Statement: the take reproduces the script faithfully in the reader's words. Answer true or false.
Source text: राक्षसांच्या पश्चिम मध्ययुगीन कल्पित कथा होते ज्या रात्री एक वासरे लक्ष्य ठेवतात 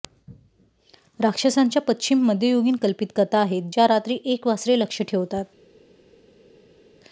false